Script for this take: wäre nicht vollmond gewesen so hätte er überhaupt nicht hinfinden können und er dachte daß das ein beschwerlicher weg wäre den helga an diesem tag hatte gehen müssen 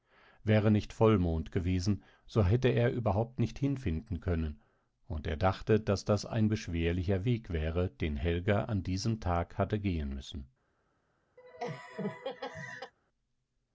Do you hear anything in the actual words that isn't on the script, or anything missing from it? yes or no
no